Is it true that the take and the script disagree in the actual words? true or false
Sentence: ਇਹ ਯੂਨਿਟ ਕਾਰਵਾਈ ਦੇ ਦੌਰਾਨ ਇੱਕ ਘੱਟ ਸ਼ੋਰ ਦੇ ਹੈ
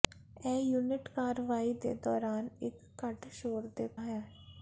false